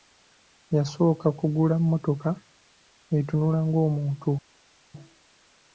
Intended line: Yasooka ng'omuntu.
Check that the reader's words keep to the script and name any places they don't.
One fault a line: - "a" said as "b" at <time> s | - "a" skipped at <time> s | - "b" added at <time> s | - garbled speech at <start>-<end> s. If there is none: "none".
- "kugula mmotoka etunula" added at 1.4 s